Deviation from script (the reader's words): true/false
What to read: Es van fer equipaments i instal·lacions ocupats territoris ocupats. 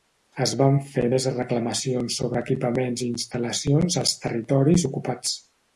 true